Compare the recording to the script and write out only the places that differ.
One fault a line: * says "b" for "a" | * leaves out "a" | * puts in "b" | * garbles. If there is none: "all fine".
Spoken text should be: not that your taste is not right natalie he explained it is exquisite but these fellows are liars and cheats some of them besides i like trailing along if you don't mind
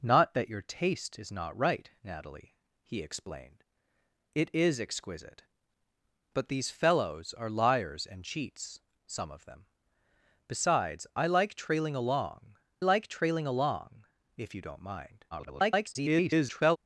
* puts in "like trailing along"
* garbles